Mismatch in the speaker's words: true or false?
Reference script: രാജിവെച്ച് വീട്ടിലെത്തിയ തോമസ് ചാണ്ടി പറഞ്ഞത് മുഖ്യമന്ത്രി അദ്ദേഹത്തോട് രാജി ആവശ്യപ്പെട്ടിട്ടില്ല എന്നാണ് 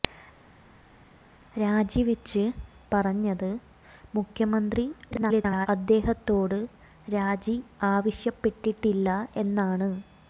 true